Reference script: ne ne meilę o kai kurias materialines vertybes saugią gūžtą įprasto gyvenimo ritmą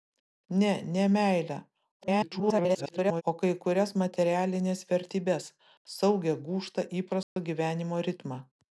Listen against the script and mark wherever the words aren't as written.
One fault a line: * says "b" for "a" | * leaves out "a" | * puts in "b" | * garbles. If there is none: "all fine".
* garbles